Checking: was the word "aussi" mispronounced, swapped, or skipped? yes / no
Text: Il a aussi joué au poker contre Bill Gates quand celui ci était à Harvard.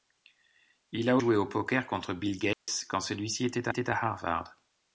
yes